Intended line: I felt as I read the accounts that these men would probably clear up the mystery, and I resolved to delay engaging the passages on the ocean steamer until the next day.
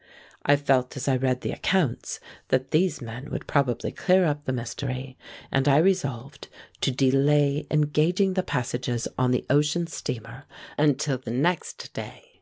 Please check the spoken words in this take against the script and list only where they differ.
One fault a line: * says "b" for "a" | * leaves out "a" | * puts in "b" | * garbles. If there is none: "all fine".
all fine